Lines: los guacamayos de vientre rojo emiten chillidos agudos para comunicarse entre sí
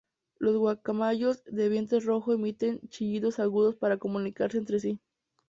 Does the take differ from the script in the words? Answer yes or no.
no